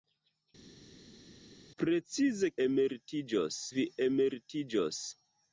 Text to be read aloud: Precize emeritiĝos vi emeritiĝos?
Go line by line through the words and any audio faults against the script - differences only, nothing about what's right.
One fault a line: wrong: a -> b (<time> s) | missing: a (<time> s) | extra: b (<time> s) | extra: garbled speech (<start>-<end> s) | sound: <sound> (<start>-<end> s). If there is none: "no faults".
no faults